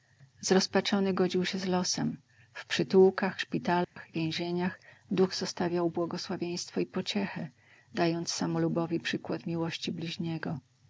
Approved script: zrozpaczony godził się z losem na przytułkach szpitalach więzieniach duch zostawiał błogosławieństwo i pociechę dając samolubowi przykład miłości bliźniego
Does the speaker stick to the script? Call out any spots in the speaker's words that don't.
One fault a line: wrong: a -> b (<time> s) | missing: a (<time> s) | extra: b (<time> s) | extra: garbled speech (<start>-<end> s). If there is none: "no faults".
wrong: na -> w (2.5 s)